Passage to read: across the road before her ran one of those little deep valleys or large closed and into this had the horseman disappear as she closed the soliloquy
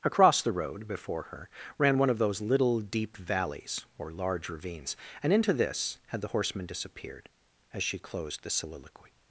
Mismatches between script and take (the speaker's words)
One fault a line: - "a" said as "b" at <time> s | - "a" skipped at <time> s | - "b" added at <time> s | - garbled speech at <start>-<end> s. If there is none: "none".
- "closed" said as "ravines" at 4.5 s
- "disappear" said as "disappeared" at 6.7 s